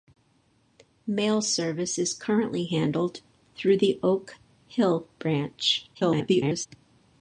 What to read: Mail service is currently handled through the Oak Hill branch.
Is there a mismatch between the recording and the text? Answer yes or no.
yes